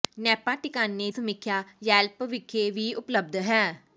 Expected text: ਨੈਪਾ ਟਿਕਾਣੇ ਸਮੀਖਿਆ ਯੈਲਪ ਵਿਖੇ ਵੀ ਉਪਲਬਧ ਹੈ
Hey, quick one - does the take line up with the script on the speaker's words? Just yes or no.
yes